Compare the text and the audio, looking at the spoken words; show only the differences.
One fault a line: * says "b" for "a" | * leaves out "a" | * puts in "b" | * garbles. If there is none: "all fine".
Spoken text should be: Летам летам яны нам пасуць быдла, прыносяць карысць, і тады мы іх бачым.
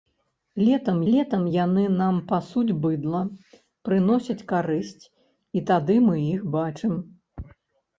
all fine